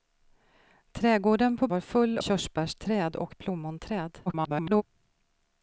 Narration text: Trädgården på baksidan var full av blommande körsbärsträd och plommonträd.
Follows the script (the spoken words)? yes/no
no